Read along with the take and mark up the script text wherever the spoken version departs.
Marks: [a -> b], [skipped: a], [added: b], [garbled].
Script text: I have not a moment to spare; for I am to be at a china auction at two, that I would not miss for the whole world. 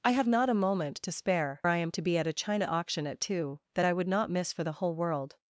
I have not a moment to spare; [skipped: for] I am to be at a china auction at two, that I would not miss for the whole world.